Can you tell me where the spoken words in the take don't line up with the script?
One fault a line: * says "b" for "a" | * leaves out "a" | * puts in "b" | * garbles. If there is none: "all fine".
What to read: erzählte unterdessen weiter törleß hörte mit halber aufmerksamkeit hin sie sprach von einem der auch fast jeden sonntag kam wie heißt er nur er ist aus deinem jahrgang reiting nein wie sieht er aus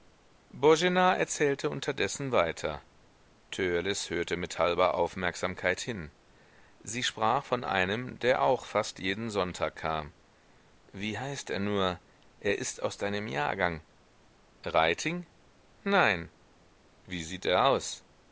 all fine